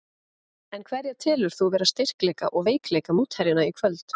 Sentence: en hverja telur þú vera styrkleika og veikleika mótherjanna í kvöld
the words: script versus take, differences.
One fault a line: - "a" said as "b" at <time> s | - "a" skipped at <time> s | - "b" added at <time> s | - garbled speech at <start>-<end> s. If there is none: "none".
none